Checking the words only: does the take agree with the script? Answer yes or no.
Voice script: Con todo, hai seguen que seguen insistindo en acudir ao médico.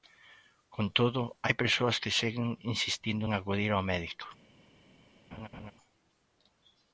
no